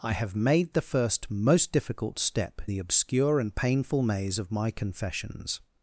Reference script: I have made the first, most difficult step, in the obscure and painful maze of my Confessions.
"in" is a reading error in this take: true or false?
true